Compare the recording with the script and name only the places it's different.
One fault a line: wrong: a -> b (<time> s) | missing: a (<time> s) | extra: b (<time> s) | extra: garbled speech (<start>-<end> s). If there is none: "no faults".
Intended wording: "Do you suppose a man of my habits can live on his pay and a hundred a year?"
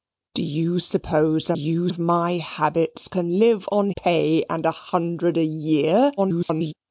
wrong: man -> you (1.5 s)
missing: his (3.9 s)
extra: garbled speech (6.2-6.7 s)